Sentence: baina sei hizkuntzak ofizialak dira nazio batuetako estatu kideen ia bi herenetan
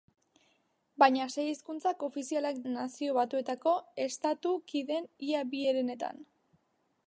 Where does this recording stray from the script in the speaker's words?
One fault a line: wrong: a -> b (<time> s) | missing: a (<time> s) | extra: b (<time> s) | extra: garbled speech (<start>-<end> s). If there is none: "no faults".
missing: dira (2.6 s)